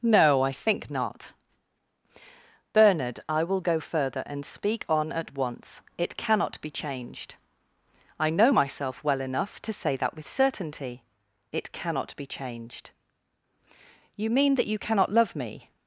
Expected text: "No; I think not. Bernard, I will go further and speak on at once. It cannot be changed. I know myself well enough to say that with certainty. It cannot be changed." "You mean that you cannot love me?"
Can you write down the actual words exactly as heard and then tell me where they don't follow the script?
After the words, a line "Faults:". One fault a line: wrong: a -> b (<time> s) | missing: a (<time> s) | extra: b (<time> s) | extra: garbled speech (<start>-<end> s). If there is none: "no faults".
"No; I think not. Bernard, I will go further and speak on at once. It cannot be changed. I know myself well enough to say that with certainty. It cannot be changed." "You mean that you cannot love me?"
Faults:
no faults